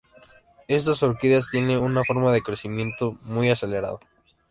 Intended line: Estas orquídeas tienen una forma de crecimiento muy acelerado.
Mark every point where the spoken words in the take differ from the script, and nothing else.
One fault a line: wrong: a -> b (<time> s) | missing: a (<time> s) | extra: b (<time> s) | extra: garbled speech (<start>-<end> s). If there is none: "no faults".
no faults